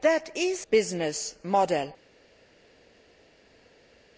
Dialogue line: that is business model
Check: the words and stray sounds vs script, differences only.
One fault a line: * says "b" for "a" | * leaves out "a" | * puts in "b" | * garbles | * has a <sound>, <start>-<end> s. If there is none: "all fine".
all fine